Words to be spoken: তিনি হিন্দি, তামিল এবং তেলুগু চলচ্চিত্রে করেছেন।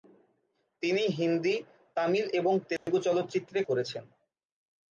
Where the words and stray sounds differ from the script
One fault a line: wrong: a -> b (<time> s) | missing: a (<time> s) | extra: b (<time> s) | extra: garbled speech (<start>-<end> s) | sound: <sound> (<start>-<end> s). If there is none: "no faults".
sound: dropout (2.8-2.9 s)